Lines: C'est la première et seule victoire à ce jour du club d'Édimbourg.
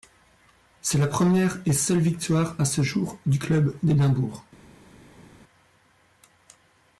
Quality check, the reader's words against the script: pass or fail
pass